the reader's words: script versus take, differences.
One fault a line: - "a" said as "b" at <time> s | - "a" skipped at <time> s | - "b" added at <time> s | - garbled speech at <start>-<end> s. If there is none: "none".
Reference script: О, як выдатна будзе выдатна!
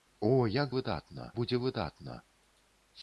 none